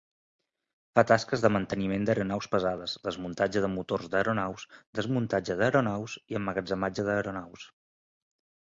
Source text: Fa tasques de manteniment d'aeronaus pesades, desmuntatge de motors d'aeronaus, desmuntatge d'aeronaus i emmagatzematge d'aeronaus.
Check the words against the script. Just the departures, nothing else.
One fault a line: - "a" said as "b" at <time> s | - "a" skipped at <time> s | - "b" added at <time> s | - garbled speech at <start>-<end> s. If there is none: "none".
none